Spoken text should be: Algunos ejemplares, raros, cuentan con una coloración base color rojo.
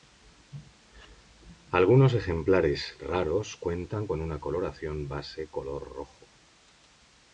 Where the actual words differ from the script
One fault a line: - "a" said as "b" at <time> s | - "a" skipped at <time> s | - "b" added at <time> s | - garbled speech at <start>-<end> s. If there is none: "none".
none